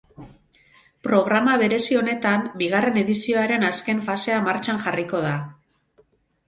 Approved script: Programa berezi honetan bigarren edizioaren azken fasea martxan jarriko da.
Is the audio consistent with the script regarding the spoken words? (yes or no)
yes